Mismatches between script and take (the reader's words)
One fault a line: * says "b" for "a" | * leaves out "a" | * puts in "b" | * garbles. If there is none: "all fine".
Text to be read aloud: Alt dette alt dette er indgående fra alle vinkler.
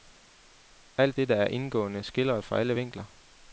* leaves out "alt dette"
* puts in "skildret"